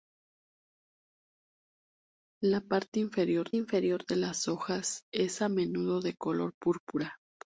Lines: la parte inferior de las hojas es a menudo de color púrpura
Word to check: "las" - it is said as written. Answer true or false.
true